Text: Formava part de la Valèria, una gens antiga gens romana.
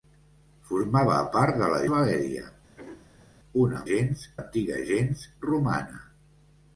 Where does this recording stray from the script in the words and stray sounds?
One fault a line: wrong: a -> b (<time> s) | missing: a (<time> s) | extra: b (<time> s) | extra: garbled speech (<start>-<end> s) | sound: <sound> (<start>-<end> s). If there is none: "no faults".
sound: throat clearing (2.8-3.3 s)